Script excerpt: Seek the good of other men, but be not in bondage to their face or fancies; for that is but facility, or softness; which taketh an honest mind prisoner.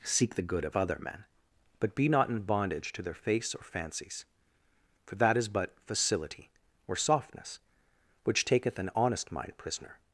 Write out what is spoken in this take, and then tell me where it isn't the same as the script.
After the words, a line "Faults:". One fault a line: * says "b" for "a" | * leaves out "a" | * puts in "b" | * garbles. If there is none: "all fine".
Seek the good of other men, but be not in bondage to their face or fancies; for that is but facility, or softness; which taketh an honest mind prisoner.
Faults:
all fine